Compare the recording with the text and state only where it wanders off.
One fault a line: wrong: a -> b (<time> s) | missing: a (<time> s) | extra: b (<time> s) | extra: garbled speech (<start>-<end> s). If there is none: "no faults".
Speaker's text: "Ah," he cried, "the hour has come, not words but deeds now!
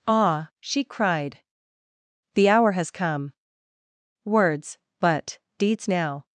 wrong: he -> she (0.6 s)
missing: not (3.3 s)